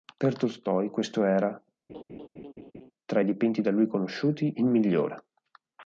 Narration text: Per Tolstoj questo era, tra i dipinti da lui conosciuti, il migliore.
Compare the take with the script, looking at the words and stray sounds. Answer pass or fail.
fail